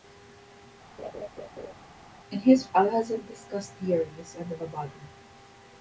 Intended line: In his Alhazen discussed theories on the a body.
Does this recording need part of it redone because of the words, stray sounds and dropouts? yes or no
yes